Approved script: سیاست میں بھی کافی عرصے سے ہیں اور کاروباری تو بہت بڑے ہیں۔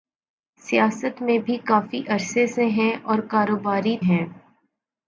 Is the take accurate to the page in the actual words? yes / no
no